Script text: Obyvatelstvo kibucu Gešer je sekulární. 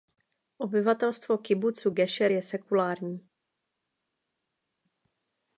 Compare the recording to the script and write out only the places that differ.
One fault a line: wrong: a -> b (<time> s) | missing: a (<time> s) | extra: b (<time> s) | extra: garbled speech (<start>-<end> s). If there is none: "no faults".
no faults